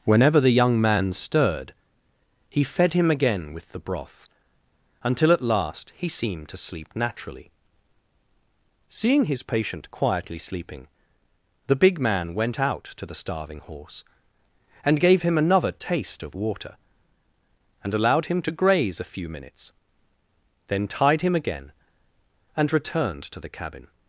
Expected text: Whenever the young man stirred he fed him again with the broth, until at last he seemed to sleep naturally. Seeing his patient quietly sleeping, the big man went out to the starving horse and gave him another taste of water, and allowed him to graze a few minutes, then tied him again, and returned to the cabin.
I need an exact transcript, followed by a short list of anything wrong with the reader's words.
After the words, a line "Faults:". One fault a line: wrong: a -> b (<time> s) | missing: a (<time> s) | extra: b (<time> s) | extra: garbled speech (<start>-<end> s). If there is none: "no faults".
Whenever the young man stirred he fed him again with the broth, until at last he seemed to sleep naturally. Seeing his patient quietly sleeping, the big man went out to the starving horse and gave him another taste of water, and allowed him to graze a few minutes, then tied him again, and returned to the cabin.
Faults:
no faults